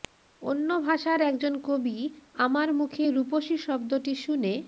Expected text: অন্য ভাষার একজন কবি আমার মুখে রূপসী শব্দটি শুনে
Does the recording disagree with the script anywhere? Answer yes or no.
no